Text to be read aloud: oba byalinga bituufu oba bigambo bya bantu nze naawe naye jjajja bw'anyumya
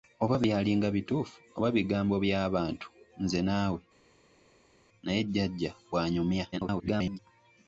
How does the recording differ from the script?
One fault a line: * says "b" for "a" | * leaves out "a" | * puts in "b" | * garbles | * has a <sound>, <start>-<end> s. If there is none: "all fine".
* garbles